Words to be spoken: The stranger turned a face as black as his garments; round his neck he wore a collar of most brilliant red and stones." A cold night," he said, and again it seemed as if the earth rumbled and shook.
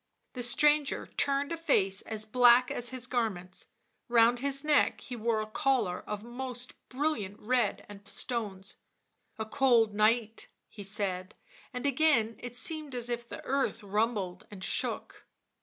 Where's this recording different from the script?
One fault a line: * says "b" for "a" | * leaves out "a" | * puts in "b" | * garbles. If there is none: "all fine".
all fine